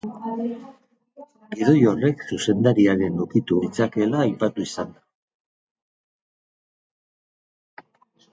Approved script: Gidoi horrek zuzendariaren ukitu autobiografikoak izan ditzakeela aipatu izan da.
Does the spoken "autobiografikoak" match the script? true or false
false